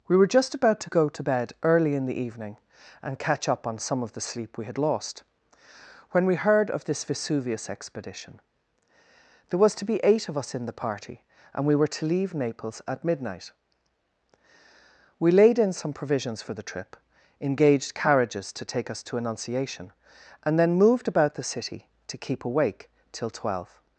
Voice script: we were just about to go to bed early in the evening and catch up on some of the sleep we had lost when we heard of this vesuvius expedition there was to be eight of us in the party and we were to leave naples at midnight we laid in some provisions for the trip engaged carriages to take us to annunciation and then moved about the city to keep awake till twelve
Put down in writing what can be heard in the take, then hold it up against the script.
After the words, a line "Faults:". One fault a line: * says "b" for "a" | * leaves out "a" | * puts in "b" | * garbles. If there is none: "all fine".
we were just about to go to bed early in the evening and catch up on some of the sleep we had lost when we heard of this vesuvius expedition there was to be eight of us in the party and we were to leave naples at midnight we laid in some provisions for the trip engaged carriages to take us to annunciation and then moved about the city to keep awake till twelve
Faults:
all fine